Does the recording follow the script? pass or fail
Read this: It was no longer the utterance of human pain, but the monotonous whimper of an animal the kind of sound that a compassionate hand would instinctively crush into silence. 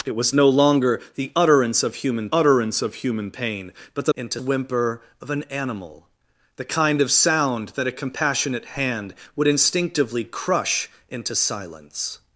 fail